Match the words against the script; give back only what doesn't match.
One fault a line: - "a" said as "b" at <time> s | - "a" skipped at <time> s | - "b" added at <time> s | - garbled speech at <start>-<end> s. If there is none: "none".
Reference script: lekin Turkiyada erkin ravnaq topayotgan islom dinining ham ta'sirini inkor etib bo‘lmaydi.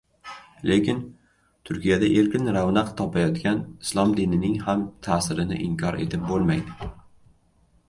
none